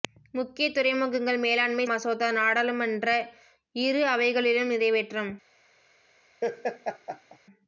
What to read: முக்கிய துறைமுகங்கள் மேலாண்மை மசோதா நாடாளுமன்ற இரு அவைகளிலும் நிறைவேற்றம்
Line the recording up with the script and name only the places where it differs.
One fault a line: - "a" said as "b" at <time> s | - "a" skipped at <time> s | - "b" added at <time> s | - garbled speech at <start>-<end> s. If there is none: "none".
none